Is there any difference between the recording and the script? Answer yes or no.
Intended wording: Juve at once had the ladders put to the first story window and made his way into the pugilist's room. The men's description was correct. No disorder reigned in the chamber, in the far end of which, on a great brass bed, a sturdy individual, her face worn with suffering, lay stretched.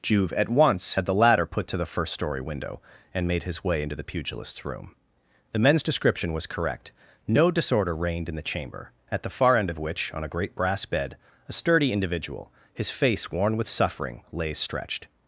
yes